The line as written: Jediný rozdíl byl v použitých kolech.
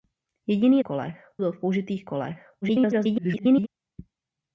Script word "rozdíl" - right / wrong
wrong